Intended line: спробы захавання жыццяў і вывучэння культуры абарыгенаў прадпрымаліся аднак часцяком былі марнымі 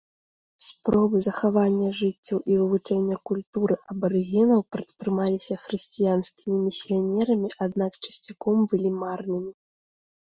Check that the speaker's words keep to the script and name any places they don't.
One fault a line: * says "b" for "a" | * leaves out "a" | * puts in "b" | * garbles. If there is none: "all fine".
* puts in "хрысціянскімі місіянерамі"